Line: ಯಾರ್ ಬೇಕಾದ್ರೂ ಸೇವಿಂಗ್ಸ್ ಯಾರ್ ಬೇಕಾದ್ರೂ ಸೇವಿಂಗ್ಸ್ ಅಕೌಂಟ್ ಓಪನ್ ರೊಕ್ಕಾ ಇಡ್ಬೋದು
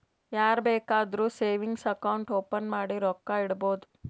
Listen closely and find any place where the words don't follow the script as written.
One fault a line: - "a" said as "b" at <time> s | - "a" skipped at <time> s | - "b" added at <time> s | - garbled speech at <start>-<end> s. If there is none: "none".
- "ಯಾರ್ ಬೇಕಾದ್ರೂ ಸೇವಿಂಗ್ಸ್" skipped at 1.8 s
- "ಮಾಡಿ" added at 2.7 s